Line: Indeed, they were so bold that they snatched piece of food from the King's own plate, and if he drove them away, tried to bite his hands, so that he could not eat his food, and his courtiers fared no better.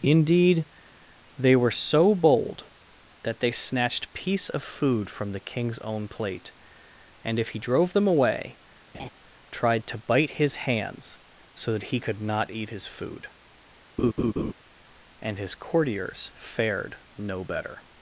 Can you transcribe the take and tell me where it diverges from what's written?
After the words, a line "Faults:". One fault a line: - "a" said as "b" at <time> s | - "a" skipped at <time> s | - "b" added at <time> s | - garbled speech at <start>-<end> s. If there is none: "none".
Indeed, they were so bold that they snatched piece of food from the King's own plate, and if he drove them away, tried to bite his hands, so that he could not eat his food, and his courtiers fared no better.
Faults:
none